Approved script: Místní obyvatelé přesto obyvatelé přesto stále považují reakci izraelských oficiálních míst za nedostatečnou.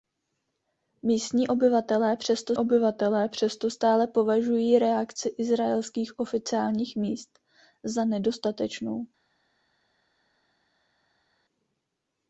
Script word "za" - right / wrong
right